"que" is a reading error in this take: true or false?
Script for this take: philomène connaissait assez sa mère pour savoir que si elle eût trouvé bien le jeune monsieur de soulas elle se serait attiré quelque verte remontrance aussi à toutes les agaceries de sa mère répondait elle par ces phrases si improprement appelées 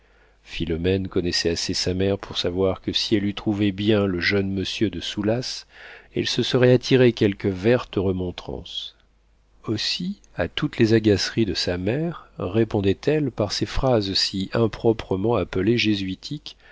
false